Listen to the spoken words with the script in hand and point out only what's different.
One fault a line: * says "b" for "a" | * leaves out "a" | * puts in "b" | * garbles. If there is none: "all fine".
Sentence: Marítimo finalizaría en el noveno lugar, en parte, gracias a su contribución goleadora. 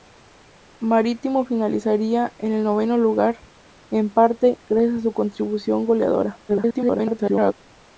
* garbles